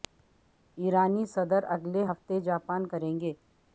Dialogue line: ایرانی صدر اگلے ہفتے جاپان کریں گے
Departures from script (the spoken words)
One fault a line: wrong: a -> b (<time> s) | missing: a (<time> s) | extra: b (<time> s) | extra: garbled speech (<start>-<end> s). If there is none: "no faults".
no faults